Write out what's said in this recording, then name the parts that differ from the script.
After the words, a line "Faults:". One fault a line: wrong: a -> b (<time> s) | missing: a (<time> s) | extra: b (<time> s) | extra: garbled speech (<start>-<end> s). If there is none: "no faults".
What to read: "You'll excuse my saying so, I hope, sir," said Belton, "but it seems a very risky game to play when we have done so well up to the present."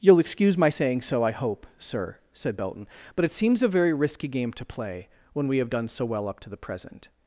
"You'll excuse my saying so, I hope, sir," said Belton, "but it seems a very risky game to play when we have done so well up to the present."
Faults:
no faults